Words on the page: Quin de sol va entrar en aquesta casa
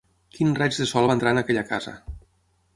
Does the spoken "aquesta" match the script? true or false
false